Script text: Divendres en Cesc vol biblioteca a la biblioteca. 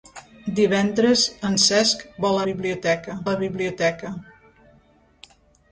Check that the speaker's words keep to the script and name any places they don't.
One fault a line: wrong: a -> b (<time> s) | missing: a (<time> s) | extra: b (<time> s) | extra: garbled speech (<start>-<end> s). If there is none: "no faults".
no faults